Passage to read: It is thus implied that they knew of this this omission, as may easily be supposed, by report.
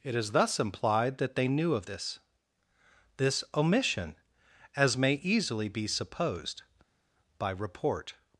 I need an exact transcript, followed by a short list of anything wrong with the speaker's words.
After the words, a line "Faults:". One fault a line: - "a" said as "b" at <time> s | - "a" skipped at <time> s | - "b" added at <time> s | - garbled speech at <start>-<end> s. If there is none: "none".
It is thus implied that they knew of this this omission, as may easily be supposed, by report.
Faults:
none